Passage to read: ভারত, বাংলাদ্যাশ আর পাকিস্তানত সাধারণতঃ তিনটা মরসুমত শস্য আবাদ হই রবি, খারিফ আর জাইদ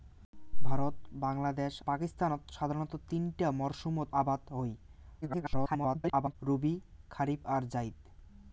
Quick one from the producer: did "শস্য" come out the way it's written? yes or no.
no